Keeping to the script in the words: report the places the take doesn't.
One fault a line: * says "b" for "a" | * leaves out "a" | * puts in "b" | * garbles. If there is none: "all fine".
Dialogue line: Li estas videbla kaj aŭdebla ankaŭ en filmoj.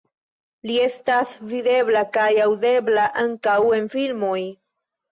all fine